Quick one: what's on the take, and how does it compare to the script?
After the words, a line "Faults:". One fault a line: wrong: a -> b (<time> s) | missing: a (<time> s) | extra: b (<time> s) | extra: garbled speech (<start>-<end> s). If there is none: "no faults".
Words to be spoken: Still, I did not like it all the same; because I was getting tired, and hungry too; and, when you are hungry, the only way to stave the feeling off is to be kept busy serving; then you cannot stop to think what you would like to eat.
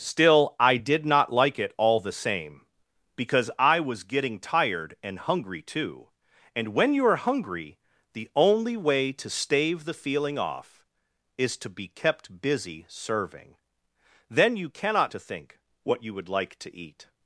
Still, I did not like it all the same; because I was getting tired, and hungry too; and, when you are hungry, the only way to stave the feeling off is to be kept busy serving; then you cannot to think what you would like to eat.
Faults:
missing: stop (15.1 s)